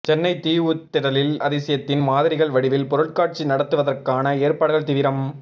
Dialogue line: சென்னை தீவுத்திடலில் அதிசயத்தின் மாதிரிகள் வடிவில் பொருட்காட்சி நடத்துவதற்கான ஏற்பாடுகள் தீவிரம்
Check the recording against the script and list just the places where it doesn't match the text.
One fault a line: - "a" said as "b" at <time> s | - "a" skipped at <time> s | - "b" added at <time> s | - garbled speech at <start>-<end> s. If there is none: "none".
none